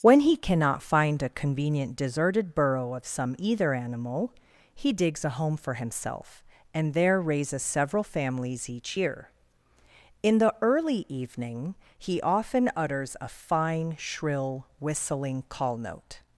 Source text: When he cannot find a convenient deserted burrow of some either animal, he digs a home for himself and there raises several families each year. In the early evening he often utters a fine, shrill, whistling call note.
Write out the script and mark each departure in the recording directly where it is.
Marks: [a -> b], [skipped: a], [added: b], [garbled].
When he cannot find a convenient deserted burrow of some either animal, he digs a home for himself and there raises several families each year. In the early evening he often utters a fine, shrill, whistling call note.